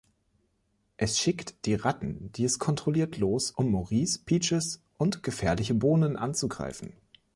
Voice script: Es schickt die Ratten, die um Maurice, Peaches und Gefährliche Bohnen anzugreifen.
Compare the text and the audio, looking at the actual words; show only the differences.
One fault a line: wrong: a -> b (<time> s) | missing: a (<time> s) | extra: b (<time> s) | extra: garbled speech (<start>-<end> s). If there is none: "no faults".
extra: es kontrolliert los (2.4 s)